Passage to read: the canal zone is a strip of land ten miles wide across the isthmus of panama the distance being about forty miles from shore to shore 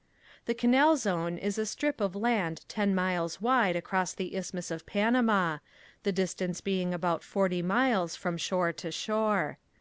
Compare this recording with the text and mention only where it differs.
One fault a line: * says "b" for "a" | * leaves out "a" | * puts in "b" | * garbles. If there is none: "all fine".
all fine